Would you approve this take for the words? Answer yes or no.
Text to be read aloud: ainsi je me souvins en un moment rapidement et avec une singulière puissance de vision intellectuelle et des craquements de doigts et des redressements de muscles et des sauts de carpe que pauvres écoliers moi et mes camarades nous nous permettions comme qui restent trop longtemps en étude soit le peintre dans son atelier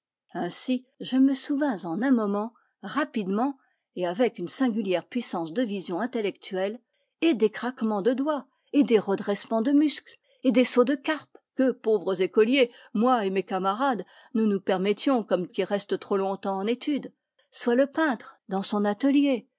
yes